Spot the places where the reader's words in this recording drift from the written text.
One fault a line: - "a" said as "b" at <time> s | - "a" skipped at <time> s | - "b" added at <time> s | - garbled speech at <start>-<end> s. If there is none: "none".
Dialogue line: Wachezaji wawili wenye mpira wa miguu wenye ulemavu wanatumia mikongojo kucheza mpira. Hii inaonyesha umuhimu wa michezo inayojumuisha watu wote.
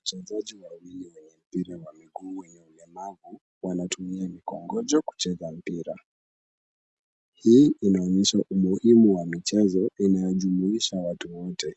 none